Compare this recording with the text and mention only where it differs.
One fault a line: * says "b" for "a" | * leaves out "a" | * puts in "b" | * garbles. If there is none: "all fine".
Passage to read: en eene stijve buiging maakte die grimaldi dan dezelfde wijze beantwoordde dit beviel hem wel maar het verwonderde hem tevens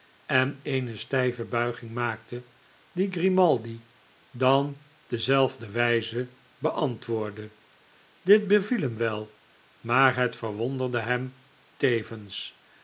all fine